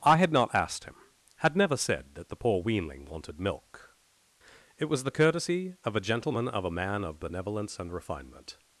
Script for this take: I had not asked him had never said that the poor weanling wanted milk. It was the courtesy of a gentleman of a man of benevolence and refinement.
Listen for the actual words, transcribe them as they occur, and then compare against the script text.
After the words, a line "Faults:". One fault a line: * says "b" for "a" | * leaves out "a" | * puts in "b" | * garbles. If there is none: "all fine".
I had not asked him had never said that the poor weanling wanted milk. It was the courtesy of a gentleman of a man of benevolence and refinement.
Faults:
all fine